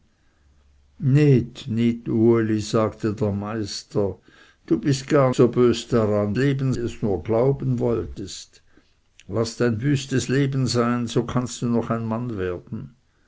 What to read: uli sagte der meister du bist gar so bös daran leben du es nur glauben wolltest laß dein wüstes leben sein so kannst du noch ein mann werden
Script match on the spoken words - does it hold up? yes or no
yes